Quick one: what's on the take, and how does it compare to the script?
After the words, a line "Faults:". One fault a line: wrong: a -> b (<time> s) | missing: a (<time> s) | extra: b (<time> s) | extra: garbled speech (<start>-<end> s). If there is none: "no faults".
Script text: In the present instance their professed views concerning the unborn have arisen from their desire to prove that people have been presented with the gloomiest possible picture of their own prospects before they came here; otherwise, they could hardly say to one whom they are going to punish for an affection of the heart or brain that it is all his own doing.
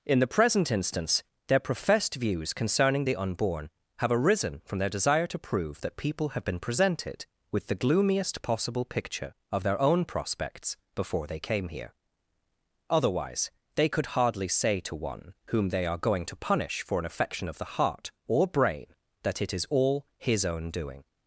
In the present instance their professed views concerning the unborn have arisen from their desire to prove that people have been presented with the gloomiest possible picture of their own prospects before they came here; otherwise, they could hardly say to one whom they are going to punish for an affection of the heart or brain that it is all his own doing.
Faults:
no faults